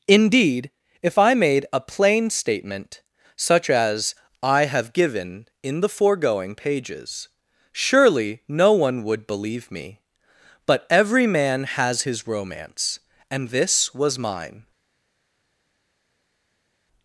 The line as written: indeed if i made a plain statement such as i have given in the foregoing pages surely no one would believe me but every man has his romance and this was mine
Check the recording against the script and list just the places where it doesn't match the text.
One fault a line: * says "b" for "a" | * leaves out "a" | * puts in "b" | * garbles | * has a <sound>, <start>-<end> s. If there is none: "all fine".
all fine